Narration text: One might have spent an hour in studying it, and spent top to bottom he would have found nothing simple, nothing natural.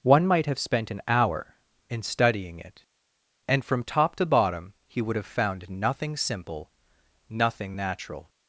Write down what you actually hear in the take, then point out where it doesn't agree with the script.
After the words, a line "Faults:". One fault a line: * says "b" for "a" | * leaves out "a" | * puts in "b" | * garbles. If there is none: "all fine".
One might have spent an hour in studying it, and from top to bottom he would have found nothing simple, nothing natural.
Faults:
* says "from" for "spent"